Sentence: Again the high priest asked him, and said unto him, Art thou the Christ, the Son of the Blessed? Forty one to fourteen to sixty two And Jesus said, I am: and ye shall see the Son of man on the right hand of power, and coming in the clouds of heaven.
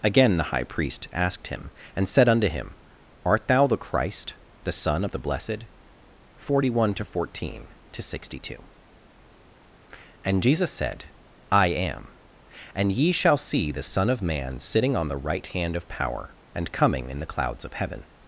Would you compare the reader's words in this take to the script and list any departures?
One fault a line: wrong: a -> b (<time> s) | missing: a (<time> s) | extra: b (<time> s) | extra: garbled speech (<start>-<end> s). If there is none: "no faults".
extra: sitting (14.6 s)